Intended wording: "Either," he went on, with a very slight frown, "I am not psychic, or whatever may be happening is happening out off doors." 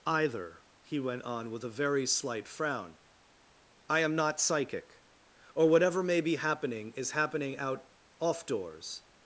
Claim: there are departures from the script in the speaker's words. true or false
false